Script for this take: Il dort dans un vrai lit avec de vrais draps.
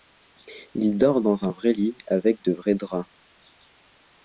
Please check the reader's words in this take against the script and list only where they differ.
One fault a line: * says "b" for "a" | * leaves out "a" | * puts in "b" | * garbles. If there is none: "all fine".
all fine